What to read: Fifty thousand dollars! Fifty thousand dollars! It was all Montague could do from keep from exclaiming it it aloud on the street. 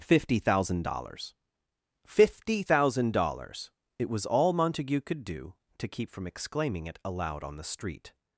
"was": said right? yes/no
yes